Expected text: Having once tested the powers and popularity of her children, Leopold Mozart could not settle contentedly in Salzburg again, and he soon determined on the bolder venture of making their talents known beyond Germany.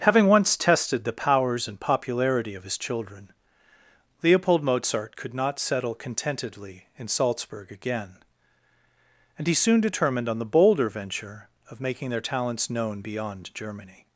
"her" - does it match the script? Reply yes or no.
no